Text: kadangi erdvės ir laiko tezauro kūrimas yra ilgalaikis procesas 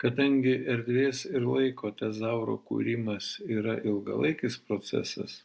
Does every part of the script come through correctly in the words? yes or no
yes